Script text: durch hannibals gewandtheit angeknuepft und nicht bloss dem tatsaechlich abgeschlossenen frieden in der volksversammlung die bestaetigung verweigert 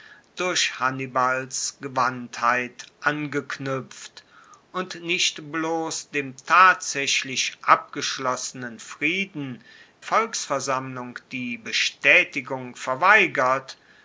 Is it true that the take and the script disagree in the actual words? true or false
true